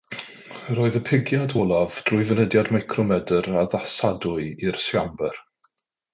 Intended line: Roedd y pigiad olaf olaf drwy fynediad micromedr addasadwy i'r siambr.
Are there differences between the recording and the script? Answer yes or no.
yes